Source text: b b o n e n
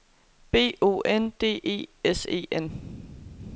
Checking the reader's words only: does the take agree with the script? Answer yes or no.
no